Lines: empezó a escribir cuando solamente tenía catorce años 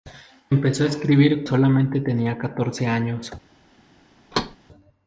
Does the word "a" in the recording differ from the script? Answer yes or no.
no